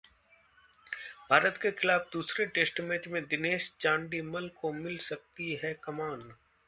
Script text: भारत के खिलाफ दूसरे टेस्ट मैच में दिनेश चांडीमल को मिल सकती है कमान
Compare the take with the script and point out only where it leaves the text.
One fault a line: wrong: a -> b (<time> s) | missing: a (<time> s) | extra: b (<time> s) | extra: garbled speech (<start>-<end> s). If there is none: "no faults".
no faults